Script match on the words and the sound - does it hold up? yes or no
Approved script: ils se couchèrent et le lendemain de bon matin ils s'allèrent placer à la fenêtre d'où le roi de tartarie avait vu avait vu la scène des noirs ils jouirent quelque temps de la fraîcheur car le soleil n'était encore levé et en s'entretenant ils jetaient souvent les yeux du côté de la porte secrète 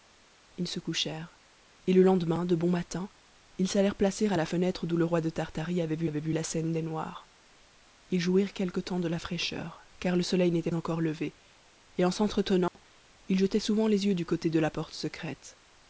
no